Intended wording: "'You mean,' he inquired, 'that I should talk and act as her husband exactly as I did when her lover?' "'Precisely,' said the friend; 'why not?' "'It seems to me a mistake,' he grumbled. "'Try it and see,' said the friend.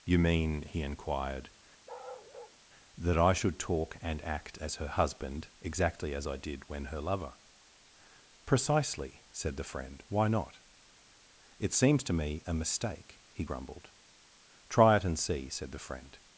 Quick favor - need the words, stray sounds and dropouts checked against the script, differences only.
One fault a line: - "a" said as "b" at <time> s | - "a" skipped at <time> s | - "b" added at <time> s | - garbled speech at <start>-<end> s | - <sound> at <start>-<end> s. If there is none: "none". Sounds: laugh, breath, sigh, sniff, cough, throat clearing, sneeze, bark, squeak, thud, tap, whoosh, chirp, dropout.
- bark at 1.9-2.6 s